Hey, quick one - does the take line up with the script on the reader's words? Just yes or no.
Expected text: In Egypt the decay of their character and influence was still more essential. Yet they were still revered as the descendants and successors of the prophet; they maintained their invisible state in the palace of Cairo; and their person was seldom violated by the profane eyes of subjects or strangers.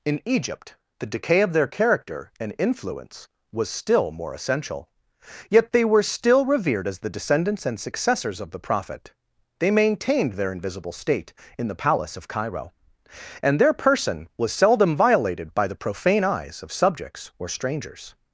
yes